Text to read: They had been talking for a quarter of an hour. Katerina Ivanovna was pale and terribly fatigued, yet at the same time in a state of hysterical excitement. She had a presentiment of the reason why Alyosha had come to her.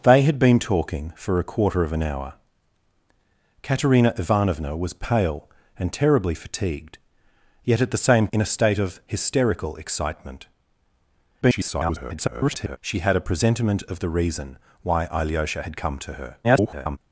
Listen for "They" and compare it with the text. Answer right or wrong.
right